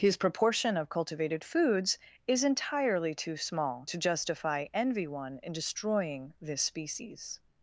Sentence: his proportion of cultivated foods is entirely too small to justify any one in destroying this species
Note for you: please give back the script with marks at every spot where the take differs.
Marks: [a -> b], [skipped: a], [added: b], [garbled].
his proportion of cultivated foods is entirely too small to justify [any -> envy] one in destroying this species